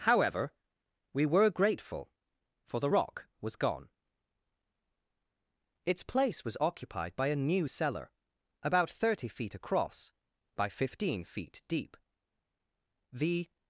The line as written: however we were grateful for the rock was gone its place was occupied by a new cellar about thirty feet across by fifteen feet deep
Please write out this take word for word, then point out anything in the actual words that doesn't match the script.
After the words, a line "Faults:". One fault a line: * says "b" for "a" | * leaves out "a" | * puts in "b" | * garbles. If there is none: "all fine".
however we were grateful for the rock was gone its place was occupied by a new cellar about thirty feet across by fifteen feet deep the
Faults:
* puts in "the"